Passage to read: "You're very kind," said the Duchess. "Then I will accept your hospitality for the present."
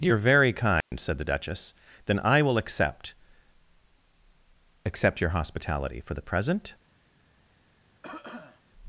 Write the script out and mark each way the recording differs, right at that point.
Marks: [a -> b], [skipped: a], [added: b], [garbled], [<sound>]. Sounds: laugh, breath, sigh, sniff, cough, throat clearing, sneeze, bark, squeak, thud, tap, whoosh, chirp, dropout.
"You're very kind," [dropout] said the Duchess. "Then I will accept [added: accept] your hospitality for the present." [cough]